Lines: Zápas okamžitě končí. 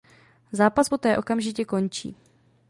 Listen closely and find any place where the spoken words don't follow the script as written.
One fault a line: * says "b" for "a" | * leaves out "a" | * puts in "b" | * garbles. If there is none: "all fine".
* puts in "poté"